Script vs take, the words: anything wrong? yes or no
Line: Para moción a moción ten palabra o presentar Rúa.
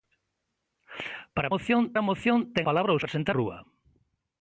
no